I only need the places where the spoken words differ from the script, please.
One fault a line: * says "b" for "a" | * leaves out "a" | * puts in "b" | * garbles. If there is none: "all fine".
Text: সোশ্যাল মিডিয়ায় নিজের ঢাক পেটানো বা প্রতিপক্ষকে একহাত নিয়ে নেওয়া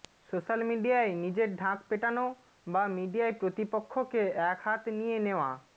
* puts in "মিডিয়ায়"